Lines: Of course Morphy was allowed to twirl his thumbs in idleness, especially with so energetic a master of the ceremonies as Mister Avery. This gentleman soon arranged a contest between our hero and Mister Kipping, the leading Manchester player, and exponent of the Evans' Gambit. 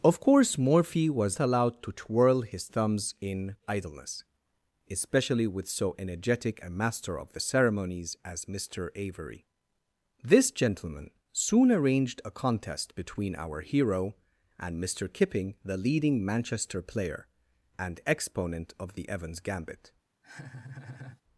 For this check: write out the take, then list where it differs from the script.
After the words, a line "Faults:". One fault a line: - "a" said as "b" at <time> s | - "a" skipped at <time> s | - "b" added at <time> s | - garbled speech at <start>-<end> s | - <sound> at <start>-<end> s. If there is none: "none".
Of course Morphy was allowed to twirl his thumbs in idleness, especially with so energetic a master of the ceremonies as Mister Avery. This gentleman soon arranged a contest between our hero and Mister Kipping, the leading Manchester player, and exponent of the Evans' Gambit.
Faults:
- laugh at 20.2-21.2 s